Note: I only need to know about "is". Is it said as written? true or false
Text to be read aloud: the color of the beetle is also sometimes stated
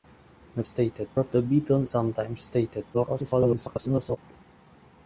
false